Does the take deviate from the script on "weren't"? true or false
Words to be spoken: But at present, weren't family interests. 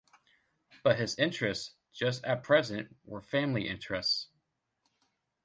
true